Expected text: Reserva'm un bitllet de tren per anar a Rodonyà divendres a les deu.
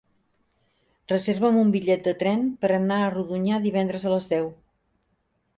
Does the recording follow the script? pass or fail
pass